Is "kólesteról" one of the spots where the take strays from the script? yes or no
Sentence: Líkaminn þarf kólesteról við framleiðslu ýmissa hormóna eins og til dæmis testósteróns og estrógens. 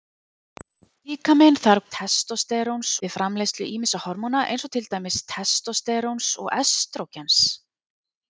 yes